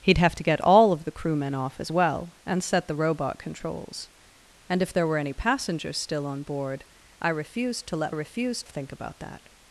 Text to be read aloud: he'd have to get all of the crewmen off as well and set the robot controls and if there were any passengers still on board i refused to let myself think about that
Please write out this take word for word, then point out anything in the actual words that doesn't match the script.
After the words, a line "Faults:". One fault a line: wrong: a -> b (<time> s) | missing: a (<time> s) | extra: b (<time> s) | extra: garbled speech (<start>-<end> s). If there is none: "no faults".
he'd have to get all of the crewmen off as well and set the robot controls and if there were any passengers still on board i refused to let refused think about that
Faults:
wrong: myself -> refused (8.1 s)